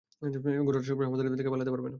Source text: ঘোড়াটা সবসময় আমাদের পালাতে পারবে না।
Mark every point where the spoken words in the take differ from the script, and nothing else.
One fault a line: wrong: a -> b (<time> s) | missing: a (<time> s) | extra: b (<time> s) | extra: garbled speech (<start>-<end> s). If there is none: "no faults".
extra: থেকে (1.4 s)